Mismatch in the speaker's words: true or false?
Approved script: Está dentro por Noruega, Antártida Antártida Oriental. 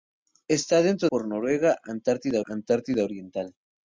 false